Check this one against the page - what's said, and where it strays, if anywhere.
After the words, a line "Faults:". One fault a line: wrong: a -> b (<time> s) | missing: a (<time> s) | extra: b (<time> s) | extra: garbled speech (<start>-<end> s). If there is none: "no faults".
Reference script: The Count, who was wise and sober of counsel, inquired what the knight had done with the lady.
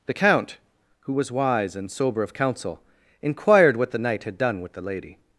The Count, who was wise and sober of counsel, inquired what the knight had done with the lady.
Faults:
no faults